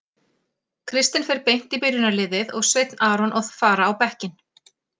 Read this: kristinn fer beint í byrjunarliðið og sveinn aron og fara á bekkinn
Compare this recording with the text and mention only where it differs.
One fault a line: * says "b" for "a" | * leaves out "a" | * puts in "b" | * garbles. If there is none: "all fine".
all fine